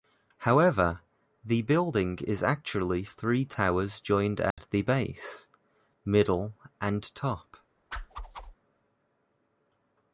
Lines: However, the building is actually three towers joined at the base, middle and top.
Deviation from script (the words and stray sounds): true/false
true